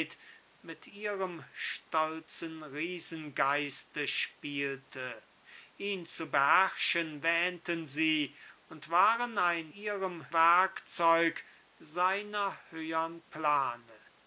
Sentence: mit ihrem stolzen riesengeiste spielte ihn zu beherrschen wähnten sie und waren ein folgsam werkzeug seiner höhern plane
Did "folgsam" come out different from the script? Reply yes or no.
yes